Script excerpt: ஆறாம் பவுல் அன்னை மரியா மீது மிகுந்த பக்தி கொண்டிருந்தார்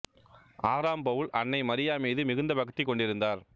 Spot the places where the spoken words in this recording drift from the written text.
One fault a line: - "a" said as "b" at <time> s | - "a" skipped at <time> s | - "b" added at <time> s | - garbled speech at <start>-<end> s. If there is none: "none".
none